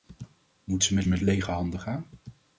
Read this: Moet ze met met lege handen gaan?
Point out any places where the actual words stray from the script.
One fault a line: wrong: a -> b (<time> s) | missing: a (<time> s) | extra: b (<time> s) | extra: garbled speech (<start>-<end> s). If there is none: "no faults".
no faults